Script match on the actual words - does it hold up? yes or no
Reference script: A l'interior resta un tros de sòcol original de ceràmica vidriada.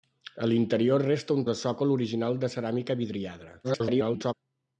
no